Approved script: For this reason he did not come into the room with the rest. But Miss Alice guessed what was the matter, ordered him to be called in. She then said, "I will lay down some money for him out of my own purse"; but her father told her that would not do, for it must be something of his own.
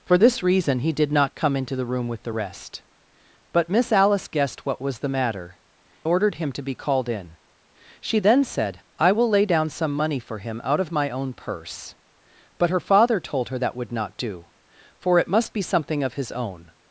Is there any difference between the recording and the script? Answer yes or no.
no